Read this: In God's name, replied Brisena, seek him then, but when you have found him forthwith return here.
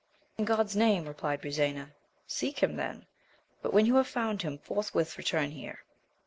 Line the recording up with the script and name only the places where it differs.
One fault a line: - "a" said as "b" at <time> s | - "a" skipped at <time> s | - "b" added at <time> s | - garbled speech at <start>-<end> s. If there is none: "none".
none